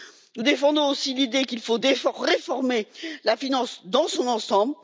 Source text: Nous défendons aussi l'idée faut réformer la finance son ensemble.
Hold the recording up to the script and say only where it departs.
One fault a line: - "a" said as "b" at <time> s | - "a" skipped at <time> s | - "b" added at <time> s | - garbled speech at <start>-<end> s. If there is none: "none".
- "qu'il" added at 1.4 s
- "dans" added at 3.8 s